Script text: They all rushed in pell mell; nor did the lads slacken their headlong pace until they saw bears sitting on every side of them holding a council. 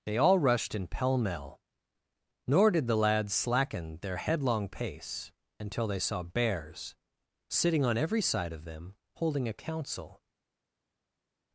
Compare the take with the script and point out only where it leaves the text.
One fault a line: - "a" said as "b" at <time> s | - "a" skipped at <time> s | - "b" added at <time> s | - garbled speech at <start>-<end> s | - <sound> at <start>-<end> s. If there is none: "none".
none